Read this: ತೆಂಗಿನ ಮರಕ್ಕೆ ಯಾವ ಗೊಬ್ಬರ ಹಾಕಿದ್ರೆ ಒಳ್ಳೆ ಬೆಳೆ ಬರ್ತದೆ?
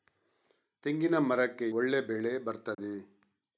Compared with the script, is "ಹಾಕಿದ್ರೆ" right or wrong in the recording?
wrong